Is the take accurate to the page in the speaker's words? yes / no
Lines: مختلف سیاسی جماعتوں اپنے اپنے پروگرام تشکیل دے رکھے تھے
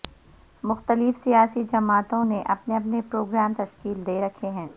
no